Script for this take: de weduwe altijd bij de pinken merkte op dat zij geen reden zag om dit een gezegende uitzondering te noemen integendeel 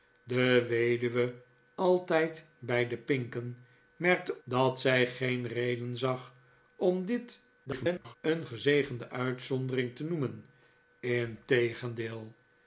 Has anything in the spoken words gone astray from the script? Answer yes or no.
yes